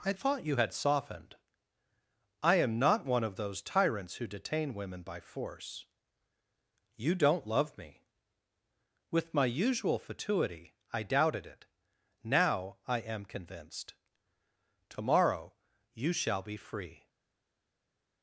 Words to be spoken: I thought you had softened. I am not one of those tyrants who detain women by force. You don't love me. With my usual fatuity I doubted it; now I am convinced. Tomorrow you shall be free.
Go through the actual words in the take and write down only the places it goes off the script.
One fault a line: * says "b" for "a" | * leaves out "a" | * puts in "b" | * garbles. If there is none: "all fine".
all fine